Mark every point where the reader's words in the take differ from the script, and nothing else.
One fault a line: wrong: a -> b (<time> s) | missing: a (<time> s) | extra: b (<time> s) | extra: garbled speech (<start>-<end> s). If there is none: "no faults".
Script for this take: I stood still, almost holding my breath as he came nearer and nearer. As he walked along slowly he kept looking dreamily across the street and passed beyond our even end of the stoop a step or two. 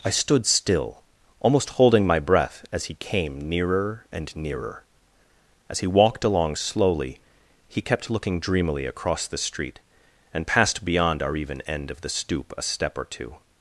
no faults